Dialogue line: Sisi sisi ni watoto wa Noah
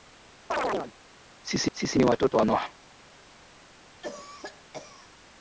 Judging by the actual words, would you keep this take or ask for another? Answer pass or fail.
pass